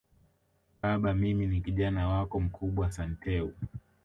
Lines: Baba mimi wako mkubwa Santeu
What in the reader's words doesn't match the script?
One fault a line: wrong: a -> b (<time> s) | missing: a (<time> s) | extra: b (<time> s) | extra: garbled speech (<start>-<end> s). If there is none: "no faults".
extra: ni Kijana (1.5 s)